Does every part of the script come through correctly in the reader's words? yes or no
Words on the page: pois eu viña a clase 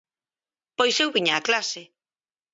yes